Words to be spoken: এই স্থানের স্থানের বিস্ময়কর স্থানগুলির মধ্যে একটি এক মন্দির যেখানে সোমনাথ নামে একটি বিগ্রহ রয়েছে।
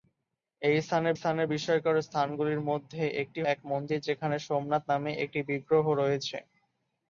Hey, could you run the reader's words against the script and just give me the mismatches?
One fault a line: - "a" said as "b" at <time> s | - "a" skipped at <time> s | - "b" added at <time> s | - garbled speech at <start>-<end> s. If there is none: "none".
none